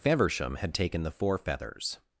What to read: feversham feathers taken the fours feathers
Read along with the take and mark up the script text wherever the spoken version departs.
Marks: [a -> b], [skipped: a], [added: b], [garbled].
feversham [feathers -> had] taken the [fours -> four] feathers